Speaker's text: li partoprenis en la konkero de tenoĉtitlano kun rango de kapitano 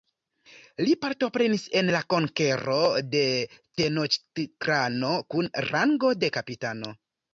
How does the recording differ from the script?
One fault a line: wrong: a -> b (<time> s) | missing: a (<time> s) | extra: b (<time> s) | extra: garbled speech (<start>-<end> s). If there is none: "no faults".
no faults